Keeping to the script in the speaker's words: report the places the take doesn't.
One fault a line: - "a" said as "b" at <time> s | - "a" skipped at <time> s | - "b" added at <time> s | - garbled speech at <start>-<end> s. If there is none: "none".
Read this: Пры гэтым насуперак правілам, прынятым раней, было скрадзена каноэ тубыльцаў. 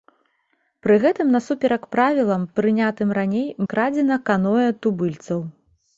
- "было" skipped at 3.5 s